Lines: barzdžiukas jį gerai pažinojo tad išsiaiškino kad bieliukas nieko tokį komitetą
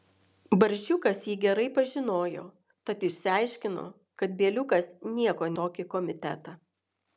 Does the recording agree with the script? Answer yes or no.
yes